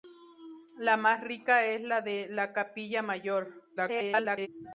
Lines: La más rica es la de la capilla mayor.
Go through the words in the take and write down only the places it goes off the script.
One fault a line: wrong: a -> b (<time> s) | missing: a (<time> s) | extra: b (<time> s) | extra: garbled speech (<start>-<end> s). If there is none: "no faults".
extra: garbled speech (3.8-4.5 s)